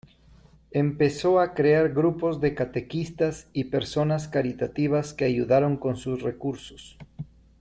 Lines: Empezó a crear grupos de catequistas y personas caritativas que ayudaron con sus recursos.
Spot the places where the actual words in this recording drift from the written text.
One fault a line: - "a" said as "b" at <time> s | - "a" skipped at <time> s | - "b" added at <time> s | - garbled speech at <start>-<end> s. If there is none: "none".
none